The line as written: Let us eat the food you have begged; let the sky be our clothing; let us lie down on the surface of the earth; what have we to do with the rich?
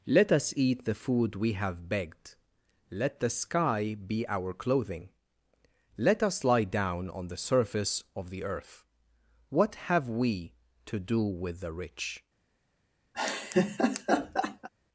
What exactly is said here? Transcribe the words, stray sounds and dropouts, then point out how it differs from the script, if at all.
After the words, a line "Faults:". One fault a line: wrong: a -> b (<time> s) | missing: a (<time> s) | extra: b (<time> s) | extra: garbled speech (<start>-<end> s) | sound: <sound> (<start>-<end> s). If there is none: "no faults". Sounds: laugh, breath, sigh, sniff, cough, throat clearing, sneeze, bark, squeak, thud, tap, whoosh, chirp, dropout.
Let us eat the food we have begged; let the sky be our clothing; let us lie down on the surface of the earth; what have we to do with the rich?
Faults:
wrong: you -> we (1.4 s)
sound: laugh (13.1-14.7 s)